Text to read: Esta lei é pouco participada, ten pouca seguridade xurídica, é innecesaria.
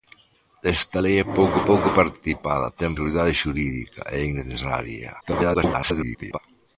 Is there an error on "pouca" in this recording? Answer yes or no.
yes